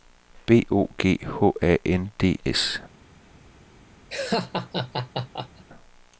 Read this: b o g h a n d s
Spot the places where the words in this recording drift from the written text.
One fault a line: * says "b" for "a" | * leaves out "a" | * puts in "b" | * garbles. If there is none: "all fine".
all fine